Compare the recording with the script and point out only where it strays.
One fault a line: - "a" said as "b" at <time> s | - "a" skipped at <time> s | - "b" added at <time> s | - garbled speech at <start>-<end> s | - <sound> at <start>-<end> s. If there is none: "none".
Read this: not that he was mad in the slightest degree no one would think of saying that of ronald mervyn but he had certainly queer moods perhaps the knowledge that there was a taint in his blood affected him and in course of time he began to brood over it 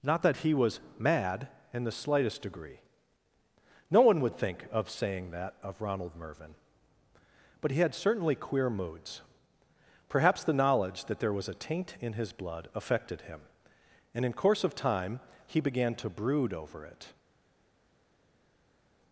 none